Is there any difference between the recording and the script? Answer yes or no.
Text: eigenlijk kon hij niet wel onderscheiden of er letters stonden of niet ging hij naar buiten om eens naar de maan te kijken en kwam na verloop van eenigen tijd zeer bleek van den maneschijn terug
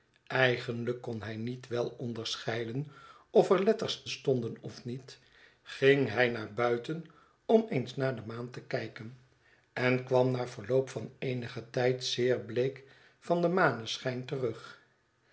no